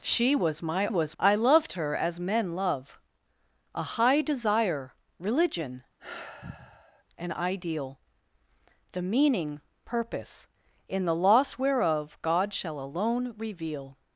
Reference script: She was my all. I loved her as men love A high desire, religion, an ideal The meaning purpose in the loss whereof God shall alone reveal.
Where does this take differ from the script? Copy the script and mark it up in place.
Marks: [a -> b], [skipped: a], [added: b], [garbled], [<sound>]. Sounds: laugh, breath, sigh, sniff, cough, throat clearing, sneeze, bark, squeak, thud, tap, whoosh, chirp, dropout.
She was my [all. -> was] I loved her as men love A high desire, religion, [sigh] an ideal The meaning purpose in the loss whereof God shall alone reveal.